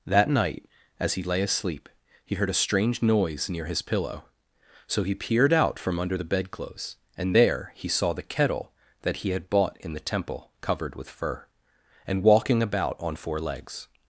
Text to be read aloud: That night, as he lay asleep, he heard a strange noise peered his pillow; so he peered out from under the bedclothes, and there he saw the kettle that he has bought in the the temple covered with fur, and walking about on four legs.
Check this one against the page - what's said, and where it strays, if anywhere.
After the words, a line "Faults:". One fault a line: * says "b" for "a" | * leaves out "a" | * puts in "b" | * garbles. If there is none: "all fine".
That night, as he lay asleep, he heard a strange noise near his pillow; so he peered out from under the bedclothes, and there he saw the kettle that he had bought in the temple covered with fur, and walking about on four legs.
Faults:
* says "near" for "peered"
* says "had" for "has"
* leaves out "the"